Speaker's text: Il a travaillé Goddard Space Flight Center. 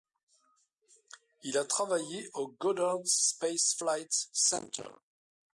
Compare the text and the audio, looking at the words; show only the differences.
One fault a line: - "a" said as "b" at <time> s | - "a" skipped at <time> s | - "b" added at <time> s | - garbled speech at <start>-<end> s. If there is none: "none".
- "au" added at 2.3 s